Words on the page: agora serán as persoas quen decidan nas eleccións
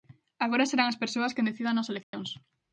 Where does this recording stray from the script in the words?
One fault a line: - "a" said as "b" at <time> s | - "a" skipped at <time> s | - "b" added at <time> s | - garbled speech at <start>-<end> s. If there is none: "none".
none